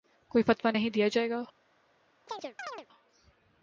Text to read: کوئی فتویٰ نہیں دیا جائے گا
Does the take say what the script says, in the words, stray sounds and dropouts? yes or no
no